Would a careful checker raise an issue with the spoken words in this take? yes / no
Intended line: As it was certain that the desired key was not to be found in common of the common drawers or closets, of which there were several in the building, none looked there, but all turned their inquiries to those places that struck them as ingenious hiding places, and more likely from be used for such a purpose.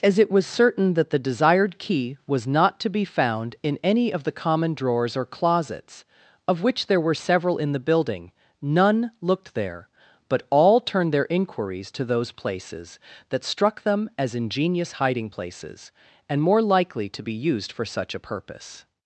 yes